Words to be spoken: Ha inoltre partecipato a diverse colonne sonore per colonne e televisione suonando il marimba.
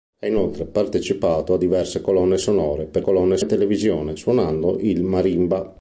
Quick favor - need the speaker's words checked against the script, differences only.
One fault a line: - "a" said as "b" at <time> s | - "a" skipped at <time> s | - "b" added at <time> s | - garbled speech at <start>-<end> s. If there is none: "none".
none